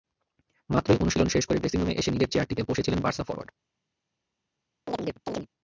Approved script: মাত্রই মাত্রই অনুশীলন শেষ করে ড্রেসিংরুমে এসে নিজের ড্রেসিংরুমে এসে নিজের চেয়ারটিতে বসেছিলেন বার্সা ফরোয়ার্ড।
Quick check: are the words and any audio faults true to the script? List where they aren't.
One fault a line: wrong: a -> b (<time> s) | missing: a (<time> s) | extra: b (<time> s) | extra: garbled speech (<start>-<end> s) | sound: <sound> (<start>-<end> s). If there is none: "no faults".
missing: মাত্রই (1.0 s)
missing: ড্রেসিংরুমে এসে নিজের (2.3 s)
sound: chirp (4.9-5.5 s)